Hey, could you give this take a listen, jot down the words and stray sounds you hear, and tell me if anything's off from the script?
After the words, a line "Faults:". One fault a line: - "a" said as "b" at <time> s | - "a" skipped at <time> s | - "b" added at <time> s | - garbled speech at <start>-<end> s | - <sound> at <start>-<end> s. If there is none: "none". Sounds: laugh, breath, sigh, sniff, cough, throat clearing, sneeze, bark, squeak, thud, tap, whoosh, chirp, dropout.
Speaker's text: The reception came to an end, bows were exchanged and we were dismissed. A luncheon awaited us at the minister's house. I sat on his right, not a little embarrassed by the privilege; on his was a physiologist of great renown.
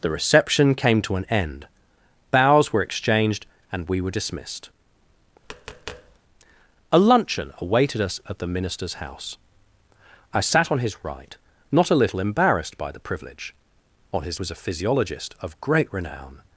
The reception came to an end, bows were exchanged and we were dismissed. A luncheon awaited us at the minister's house. I sat on his right, not a little embarrassed by the privilege; on his was a physiologist of great renown.
Faults:
- tap at 5.4-6.2 s